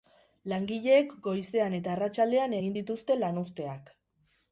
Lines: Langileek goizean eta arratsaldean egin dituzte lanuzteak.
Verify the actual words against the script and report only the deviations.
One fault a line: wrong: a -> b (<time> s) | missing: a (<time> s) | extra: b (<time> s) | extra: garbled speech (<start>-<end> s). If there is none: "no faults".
no faults